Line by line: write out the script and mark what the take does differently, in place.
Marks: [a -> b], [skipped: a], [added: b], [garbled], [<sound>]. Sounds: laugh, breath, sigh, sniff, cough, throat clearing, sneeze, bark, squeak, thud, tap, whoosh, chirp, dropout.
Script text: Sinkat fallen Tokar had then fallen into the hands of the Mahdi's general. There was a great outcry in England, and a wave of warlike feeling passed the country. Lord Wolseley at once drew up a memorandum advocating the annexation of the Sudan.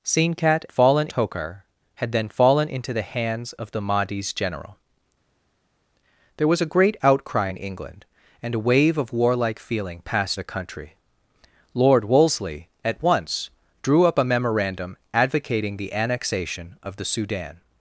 Sinkat fallen Tokar had then fallen into the hands of the Mahdi's general. There was a great outcry in England, and a wave of warlike feeling passed the country. Lord Wolseley at once drew up a memorandum advocating the annexation of the Sudan.